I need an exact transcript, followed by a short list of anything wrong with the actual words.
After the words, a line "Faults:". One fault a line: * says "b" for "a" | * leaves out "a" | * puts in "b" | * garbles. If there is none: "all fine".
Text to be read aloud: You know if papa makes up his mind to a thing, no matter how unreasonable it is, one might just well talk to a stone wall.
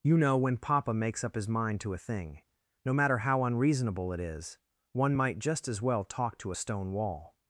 You know when papa makes up his mind to a thing, no matter how unreasonable it is, one might just as well talk to a stone wall.
Faults:
* says "when" for "if"
* puts in "as"